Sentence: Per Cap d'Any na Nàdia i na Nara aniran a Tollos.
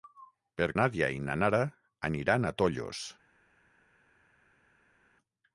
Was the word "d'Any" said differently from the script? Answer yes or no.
yes